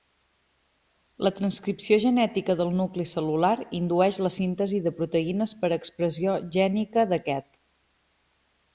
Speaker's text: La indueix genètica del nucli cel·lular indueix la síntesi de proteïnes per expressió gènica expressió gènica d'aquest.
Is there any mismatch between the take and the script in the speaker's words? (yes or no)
yes